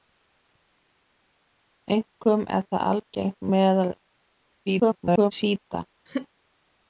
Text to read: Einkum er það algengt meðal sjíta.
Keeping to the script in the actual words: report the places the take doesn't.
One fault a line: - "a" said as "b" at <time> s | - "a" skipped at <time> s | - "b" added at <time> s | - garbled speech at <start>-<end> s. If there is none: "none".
- garbled speech at 4.7-5.3 s